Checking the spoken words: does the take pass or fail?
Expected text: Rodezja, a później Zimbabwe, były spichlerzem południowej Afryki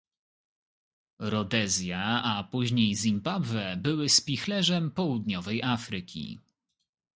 pass